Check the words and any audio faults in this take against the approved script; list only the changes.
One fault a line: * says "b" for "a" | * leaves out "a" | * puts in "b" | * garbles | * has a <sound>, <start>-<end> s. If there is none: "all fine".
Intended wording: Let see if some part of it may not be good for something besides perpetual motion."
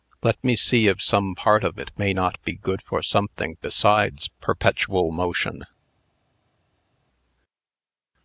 * puts in "me"